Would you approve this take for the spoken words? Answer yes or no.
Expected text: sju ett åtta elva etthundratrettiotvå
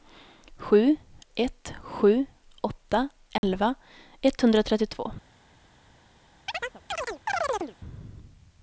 no